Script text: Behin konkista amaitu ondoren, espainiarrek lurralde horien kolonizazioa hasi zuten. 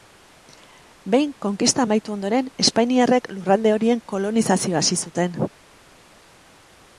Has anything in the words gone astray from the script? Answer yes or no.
no